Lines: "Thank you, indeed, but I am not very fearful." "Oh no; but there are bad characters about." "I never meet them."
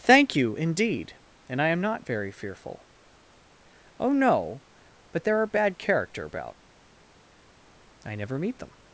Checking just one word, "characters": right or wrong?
wrong